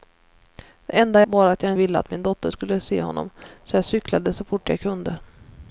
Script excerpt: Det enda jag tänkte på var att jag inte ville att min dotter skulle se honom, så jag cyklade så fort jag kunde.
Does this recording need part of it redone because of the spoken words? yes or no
yes